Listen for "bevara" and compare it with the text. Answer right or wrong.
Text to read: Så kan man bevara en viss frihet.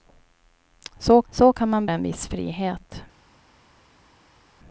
wrong